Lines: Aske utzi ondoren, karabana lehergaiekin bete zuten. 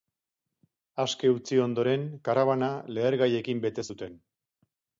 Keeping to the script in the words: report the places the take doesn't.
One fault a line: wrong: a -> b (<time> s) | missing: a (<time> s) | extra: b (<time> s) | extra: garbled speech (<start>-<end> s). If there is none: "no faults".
no faults